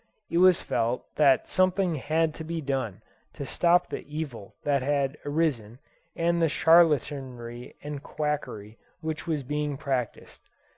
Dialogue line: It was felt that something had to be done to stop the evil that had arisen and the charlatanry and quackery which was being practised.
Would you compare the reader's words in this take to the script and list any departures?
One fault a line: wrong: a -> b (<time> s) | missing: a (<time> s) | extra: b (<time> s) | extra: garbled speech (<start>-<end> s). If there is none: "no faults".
no faults